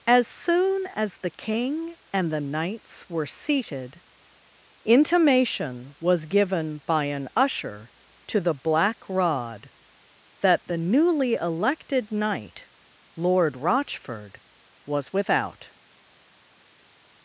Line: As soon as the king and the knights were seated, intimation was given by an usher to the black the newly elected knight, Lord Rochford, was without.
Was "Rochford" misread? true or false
false